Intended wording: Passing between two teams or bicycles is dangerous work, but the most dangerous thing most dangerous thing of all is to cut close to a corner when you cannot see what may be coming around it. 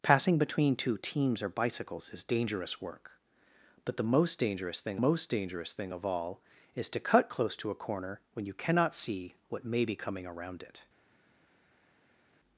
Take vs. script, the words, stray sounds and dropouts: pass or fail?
pass